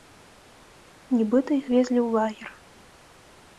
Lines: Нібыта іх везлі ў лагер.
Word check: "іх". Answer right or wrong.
right